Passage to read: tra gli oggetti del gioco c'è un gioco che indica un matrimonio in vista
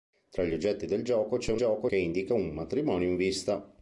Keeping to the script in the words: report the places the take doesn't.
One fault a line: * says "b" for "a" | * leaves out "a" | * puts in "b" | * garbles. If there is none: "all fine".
all fine